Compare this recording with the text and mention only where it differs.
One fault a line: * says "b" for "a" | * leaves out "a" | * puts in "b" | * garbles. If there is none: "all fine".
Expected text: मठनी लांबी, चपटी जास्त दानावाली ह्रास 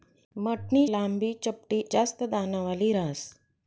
all fine